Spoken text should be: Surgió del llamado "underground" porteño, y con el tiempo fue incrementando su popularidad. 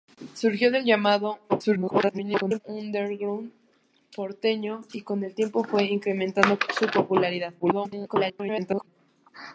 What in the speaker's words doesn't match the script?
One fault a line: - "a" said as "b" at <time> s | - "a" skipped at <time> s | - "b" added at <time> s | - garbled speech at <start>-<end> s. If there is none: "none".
- garbled speech at 1.5-2.6 s
- garbled speech at 7.6-8.9 s